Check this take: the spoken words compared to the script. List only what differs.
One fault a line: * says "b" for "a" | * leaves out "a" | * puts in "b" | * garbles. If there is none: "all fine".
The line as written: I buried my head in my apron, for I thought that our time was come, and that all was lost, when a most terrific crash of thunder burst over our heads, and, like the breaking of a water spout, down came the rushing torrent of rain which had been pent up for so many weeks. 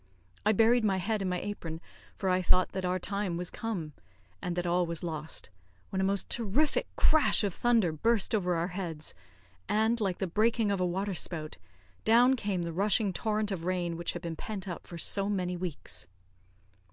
all fine